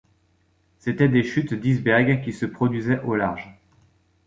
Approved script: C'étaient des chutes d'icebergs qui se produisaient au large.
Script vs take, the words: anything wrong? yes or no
no